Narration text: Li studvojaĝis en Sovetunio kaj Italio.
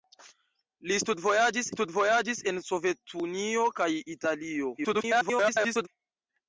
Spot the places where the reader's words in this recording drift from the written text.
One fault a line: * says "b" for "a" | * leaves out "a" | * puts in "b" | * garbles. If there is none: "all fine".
* puts in "studvojaĝis"
* garbles